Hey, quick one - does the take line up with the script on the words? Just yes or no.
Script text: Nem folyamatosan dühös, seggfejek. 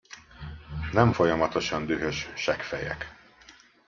yes